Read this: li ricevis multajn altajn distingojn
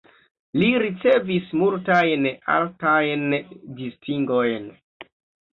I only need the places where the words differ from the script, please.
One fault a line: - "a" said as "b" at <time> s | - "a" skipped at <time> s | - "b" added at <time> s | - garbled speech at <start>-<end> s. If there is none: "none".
none